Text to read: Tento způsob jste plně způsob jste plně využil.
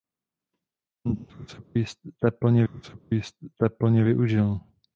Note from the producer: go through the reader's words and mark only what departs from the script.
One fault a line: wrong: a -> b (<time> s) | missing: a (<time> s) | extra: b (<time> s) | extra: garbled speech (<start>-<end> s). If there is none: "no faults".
no faults